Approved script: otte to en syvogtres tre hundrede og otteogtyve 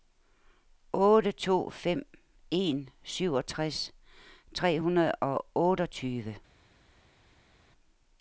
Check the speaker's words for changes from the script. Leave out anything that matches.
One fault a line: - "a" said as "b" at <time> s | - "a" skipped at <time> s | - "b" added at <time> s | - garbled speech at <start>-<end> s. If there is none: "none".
- "fem" added at 1.7 s